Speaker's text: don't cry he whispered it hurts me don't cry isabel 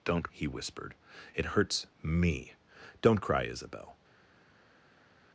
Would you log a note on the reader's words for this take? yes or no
yes